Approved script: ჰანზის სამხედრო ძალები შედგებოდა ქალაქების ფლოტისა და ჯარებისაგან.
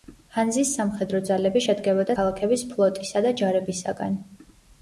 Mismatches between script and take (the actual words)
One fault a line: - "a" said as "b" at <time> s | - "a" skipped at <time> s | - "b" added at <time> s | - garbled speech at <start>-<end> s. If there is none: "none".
none